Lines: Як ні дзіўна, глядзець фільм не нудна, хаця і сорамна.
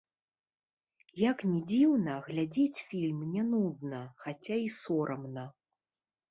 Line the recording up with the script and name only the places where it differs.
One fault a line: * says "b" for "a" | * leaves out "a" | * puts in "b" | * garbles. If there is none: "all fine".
all fine